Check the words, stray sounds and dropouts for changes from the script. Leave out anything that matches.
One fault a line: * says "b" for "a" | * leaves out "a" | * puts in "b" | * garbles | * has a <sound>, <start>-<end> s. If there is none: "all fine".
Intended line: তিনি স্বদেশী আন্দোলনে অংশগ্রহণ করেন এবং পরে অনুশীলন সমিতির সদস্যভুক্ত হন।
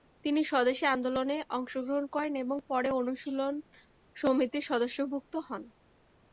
all fine